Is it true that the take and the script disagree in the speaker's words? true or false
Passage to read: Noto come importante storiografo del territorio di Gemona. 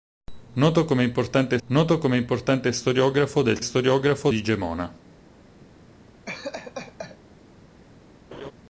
true